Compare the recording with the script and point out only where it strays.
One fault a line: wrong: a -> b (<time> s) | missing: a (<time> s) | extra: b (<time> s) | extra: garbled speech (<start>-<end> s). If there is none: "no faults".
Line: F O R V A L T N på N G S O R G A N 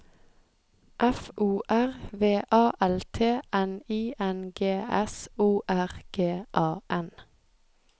wrong: på -> I (3.9 s)